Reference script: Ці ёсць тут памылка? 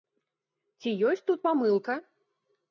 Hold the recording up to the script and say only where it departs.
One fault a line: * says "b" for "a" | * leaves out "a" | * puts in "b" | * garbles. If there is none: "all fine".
all fine